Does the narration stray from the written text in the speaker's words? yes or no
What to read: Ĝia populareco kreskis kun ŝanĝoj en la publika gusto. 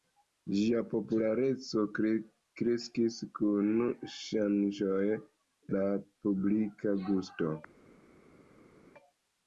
yes